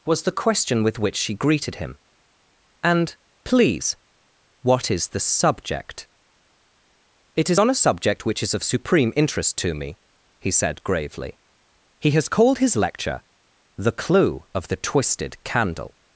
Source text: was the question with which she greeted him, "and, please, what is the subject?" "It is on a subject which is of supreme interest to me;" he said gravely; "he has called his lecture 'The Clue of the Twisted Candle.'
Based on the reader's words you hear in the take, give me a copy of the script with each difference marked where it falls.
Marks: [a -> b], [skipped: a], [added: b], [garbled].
was the question with which she greeted him, "and, please, what is the subject?" "It is on a subject which is of supreme interest to me;" he said gravely; "he has called his lecture 'The Clue of the Twisted Candle.'